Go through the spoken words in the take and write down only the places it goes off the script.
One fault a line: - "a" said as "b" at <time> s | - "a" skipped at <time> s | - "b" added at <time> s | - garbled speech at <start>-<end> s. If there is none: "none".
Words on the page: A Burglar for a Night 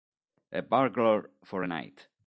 none